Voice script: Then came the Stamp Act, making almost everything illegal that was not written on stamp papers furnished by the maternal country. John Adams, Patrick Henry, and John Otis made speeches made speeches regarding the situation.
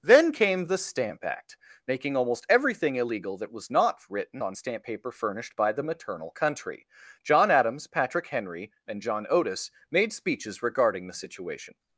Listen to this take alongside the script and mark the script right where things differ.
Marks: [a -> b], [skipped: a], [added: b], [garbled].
Then came the Stamp Act, making almost everything illegal that was not written on stamp [papers -> paper] furnished by the maternal country. John Adams, Patrick Henry, and John Otis made speeches [skipped: made speeches] regarding the situation.